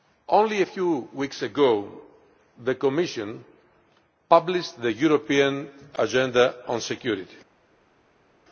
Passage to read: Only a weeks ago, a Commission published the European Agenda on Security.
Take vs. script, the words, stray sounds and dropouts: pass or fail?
fail